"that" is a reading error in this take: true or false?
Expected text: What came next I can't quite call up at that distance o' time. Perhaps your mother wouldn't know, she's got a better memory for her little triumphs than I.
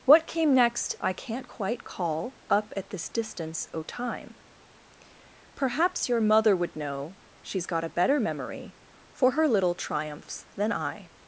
true